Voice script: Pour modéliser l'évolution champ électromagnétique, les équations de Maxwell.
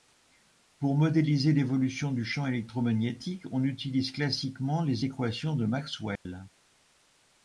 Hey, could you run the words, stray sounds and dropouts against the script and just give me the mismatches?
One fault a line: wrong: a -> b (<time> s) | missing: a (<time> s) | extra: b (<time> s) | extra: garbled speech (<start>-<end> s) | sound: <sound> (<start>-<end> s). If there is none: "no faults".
extra: du (2.1 s)
extra: on utilise classiquement (3.5 s)
sound: dropout (6.2-6.3 s)